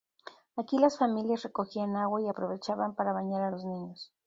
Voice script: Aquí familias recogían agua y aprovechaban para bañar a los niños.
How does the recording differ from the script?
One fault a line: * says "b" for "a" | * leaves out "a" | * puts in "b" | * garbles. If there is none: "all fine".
* puts in "las"